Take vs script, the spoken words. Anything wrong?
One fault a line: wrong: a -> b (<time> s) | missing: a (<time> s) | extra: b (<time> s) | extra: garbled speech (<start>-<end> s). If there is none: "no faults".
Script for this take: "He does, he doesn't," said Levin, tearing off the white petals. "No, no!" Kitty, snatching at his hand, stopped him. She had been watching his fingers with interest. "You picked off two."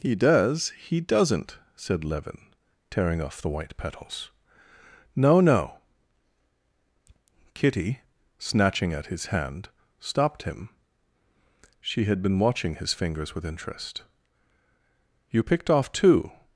no faults